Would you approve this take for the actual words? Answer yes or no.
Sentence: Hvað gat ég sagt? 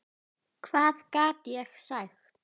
yes